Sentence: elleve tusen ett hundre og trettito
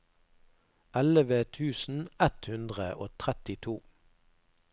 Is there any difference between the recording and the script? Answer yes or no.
no